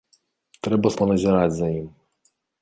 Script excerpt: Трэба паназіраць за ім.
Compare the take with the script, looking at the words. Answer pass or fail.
pass